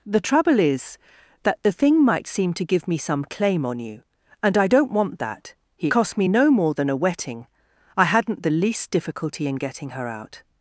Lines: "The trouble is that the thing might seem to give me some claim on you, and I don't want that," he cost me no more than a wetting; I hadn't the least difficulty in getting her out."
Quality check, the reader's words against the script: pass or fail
pass